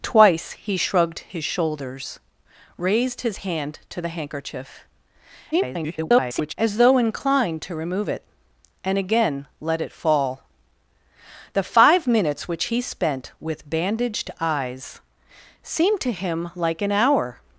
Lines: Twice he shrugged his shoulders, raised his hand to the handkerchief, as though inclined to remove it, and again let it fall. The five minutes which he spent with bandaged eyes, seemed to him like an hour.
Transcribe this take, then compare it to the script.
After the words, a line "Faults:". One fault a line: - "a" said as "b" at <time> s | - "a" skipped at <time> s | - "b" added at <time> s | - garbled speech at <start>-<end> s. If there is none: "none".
Twice he shrugged his shoulders, raised his hand to the handkerchief, [garbled] as though inclined to remove it, and again let it fall. The five minutes which he spent with bandaged eyes, seemed to him like an hour.
Faults:
- garbled speech at 5.5-6.5 s